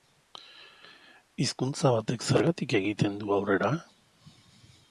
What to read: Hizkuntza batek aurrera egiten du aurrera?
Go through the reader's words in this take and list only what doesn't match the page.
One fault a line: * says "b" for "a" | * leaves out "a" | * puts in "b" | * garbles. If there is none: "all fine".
* says "zergatik" for "aurrera"